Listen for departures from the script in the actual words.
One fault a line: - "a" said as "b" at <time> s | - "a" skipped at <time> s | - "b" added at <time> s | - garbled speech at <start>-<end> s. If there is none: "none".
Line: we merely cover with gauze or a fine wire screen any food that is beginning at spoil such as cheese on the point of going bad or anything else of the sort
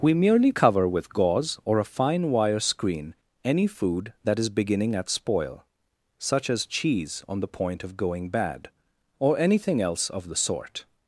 none